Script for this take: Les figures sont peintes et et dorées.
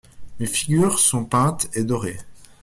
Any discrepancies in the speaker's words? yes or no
yes